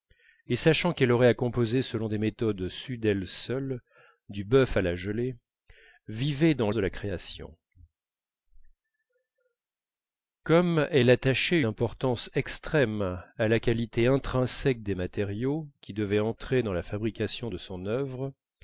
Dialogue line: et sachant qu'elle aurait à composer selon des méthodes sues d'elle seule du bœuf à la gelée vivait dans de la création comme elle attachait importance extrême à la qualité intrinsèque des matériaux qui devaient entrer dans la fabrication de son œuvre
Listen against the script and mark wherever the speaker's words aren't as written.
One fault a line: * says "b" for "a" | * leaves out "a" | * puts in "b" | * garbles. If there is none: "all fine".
all fine